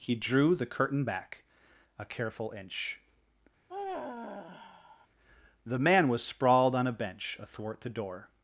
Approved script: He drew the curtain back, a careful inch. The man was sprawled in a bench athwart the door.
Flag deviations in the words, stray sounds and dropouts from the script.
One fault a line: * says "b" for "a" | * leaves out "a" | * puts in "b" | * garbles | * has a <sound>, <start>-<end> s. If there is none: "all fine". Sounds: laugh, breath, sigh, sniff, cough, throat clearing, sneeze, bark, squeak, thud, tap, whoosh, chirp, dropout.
* has a sigh, 3.7-5.1 s
* says "on" for "in"